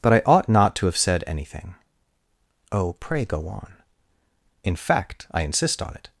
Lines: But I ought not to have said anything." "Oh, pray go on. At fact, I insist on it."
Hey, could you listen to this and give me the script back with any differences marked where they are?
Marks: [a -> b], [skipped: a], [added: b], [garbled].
But I ought not to have said anything." "Oh, pray go on. [At -> In] fact, I insist on it."